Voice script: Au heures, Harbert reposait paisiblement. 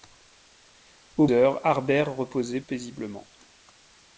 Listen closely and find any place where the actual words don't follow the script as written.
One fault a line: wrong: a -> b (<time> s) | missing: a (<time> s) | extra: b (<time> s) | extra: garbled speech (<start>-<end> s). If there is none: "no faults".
no faults